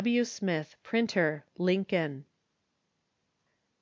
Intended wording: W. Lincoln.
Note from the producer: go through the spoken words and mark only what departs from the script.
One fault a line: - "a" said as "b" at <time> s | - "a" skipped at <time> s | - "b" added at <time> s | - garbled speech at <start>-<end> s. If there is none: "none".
- "Smith Printer" added at 0.2 s